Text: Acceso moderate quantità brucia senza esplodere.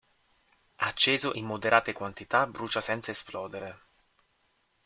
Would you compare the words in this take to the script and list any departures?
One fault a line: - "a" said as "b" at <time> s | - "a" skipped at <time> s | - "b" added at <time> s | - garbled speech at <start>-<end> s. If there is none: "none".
- "in" added at 1.3 s